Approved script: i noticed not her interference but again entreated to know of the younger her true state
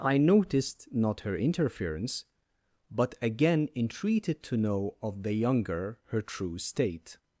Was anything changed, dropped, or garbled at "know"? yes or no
no